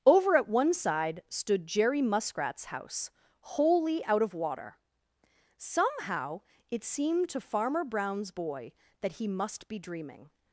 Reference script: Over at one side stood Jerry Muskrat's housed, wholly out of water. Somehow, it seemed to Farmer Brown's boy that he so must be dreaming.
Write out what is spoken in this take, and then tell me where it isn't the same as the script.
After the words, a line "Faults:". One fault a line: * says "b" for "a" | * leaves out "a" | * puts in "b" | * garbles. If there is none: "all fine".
Over at one side stood Jerry Muskrat's house, wholly out of water. Somehow, it seemed to Farmer Brown's boy that he must be dreaming.
Faults:
* says "house" for "housed"
* leaves out "so"